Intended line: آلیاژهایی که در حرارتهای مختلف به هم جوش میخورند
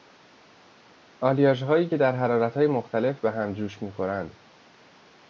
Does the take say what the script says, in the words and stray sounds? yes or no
yes